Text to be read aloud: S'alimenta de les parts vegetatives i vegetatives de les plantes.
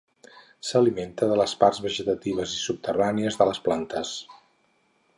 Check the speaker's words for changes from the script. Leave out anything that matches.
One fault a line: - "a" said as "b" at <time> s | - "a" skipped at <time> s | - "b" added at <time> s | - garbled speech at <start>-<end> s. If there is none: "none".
- "vegetatives" said as "subterrànies" at 2.6 s